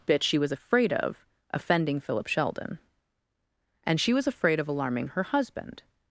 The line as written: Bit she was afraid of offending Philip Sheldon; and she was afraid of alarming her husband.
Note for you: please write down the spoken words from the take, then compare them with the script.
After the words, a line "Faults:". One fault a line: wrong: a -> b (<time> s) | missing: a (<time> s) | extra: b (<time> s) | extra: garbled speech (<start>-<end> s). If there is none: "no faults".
Bit she was afraid of offending Philip Sheldon; and she was afraid of alarming her husband.
Faults:
no faults